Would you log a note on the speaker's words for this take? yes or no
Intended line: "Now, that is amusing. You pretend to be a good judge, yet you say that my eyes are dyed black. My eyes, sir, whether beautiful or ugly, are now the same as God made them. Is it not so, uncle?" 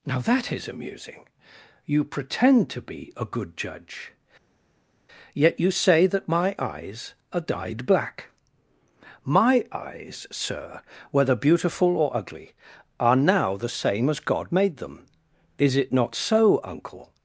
no